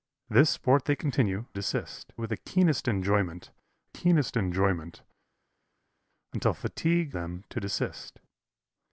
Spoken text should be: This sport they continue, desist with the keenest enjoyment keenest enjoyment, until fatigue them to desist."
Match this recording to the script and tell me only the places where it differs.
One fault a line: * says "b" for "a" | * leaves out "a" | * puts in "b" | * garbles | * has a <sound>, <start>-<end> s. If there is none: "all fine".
all fine